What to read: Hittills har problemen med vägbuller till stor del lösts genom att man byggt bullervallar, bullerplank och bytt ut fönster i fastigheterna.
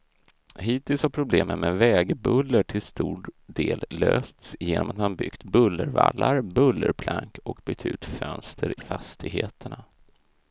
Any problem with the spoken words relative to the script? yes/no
yes